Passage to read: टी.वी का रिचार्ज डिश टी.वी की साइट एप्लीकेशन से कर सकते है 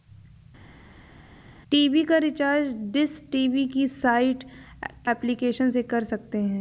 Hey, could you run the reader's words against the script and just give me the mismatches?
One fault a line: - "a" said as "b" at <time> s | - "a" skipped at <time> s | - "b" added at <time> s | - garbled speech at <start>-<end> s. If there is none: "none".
none